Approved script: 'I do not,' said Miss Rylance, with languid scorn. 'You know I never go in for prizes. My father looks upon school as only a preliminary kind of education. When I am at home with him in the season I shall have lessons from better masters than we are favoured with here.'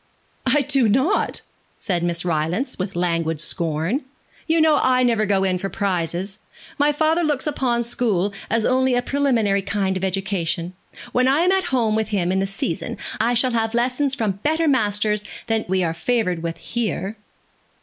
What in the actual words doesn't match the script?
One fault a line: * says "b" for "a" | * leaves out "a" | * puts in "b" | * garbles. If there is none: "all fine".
all fine